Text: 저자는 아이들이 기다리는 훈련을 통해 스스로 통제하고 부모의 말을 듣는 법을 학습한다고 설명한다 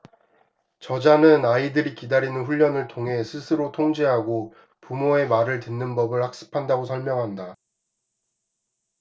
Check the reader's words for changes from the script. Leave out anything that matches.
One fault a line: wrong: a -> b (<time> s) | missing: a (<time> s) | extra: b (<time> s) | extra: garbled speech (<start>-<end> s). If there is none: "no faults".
no faults